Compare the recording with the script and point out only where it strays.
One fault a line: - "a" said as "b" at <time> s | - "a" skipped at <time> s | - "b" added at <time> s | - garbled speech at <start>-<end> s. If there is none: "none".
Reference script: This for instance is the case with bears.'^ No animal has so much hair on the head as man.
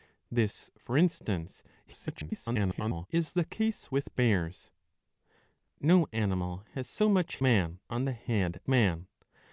- garbled speech at 1.9-3.1 s
- "hair" said as "man" at 7.4 s
- "as" skipped at 8.6 s